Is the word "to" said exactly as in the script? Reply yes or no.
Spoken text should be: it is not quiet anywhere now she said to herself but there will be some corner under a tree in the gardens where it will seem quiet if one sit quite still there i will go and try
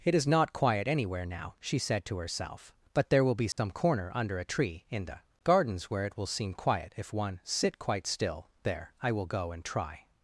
yes